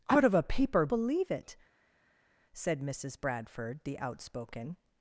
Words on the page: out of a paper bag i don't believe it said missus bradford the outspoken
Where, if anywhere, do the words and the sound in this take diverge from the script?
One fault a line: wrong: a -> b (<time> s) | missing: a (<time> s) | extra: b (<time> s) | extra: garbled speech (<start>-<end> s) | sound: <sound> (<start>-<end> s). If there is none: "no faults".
missing: bag i don't (0.9 s)